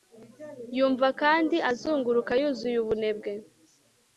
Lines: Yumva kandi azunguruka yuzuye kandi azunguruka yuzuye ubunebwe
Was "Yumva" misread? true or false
false